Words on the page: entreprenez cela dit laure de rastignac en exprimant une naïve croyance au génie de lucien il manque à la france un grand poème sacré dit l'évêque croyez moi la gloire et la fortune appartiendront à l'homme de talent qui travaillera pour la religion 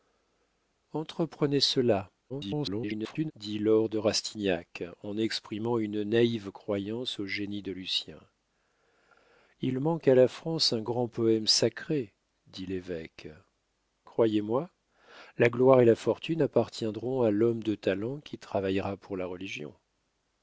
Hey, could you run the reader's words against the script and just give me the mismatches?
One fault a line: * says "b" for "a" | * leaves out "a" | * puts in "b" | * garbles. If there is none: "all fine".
* garbles